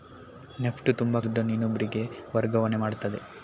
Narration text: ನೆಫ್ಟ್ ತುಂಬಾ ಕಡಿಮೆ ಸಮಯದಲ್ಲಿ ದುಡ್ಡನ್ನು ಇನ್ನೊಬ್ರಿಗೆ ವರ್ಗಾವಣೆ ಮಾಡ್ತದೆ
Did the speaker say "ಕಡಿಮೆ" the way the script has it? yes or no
no